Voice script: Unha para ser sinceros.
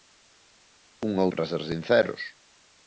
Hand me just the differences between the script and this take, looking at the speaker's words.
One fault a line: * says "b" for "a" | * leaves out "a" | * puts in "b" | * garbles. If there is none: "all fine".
all fine